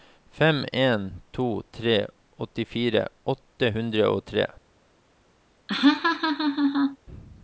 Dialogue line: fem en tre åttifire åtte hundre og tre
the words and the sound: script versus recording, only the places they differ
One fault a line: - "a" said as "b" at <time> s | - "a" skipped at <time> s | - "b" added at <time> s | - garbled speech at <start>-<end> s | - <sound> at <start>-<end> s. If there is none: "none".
- "to" added at 1.3 s
- laugh at 5.7-7.0 s